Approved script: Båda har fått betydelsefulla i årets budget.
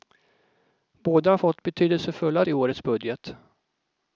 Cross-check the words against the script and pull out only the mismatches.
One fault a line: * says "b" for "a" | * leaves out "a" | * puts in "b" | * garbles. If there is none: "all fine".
all fine